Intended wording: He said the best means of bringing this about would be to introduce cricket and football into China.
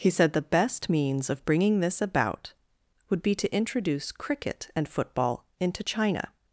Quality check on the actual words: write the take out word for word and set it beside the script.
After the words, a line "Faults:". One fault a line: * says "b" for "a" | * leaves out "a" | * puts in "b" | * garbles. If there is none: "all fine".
He said the best means of bringing this about would be to introduce cricket and football into China.
Faults:
all fine